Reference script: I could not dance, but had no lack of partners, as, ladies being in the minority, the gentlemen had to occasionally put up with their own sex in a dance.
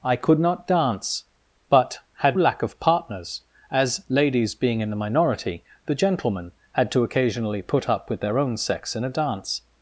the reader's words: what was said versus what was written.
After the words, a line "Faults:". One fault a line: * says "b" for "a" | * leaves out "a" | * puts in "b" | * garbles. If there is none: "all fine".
I could not dance, but had lack of partners, as, ladies being in the minority, the gentlemen had to occasionally put up with their own sex in a dance.
Faults:
* leaves out "no"